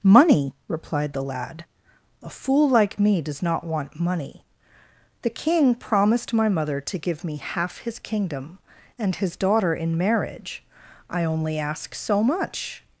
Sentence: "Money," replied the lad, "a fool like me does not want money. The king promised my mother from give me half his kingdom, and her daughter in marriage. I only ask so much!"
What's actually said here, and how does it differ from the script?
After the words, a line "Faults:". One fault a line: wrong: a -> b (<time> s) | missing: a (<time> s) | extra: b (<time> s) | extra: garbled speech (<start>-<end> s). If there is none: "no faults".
"Money," replied the lad, "a fool like me does not want money. The king promised my mother to give me half his kingdom, and his daughter in marriage. I only ask so much!"
Faults:
wrong: from -> to (6.8 s)
wrong: her -> his (9.2 s)